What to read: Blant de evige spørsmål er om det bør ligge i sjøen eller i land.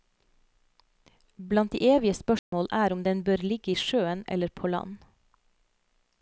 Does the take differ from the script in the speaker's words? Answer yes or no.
yes